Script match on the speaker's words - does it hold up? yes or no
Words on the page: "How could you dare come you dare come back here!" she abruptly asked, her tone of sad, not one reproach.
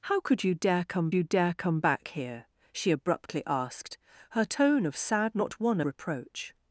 yes